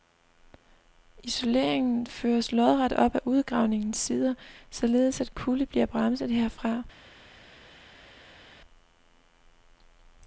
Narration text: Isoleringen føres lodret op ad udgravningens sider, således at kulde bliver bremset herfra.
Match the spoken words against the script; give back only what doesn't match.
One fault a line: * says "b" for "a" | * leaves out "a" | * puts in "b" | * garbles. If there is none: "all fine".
all fine